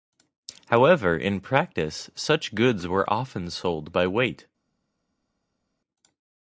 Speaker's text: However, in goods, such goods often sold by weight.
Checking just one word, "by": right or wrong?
right